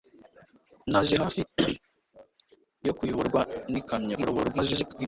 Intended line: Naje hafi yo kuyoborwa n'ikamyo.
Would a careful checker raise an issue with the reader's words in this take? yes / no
yes